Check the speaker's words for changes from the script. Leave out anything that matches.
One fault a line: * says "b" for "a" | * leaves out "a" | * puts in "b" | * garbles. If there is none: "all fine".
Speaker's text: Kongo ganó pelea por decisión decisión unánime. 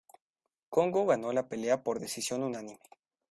* puts in "la"
* leaves out "decisión"